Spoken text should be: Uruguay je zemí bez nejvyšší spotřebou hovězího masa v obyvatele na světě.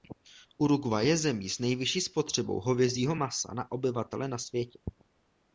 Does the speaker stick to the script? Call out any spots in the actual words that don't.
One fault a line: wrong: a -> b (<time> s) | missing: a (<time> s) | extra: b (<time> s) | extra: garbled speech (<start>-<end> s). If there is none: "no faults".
wrong: bez -> s (1.5 s)
wrong: v -> na (3.5 s)